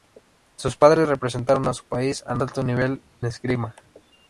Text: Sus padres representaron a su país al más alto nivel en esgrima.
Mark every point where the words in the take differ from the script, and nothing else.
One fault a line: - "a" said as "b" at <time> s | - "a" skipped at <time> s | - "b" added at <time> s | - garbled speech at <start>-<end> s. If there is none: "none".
- "más" skipped at 2.4 s
- "en" skipped at 3.0 s